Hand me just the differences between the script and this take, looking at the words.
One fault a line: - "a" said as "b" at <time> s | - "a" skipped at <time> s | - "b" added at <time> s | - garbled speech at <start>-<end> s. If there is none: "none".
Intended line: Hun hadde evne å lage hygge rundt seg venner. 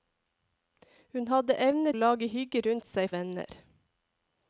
none